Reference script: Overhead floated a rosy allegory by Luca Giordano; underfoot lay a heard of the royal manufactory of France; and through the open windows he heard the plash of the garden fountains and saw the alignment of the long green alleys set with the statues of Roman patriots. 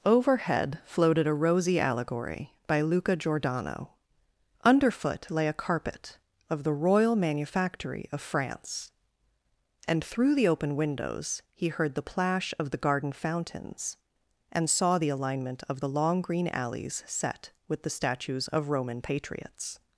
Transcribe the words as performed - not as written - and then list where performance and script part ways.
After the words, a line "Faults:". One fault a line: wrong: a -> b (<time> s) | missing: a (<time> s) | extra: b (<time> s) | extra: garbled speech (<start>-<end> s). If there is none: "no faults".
Overhead floated a rosy allegory by Luca Giordano; underfoot lay a carpet of the royal manufactory of France; and through the open windows he heard the plash of the garden fountains and saw the alignment of the long green alleys set with the statues of Roman patriots.
Faults:
wrong: heard -> carpet (5.5 s)